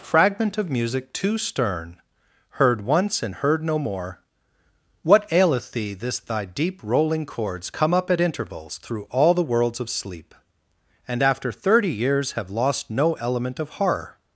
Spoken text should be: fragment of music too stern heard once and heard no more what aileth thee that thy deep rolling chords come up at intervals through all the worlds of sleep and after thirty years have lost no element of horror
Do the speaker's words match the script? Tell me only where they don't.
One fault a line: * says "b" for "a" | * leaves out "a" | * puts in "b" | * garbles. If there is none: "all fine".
* says "this" for "that"